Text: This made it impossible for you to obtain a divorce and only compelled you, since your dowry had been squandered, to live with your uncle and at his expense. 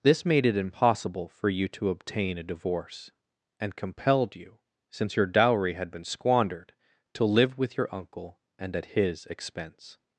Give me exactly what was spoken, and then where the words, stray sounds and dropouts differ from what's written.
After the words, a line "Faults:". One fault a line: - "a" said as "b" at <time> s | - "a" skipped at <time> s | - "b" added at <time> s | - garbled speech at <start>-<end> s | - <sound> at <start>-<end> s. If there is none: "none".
This made it impossible for you to obtain a divorce and compelled you, since your dowry had been squandered, to live with your uncle and at his expense.
Faults:
- "only" skipped at 3.8 s